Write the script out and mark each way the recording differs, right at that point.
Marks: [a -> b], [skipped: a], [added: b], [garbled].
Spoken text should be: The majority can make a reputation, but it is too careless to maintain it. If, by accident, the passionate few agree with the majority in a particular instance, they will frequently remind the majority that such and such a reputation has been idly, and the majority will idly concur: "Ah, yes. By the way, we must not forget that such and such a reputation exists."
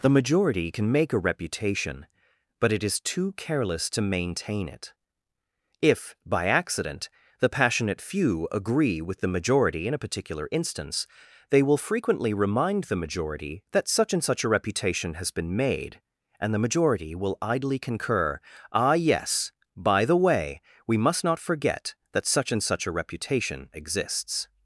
The majority can make a reputation, but it is too careless to maintain it. If, by accident, the passionate few agree with the majority in a particular instance, they will frequently remind the majority that such and such a reputation has been [idly, -> made] and the majority will idly concur: "Ah, yes. By the way, we must not forget that such and such a reputation exists."